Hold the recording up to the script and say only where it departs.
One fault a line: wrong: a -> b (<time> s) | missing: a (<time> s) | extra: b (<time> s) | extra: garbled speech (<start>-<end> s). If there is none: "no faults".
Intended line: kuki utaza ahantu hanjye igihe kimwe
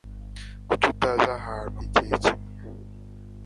missing: hanjye (1.8 s)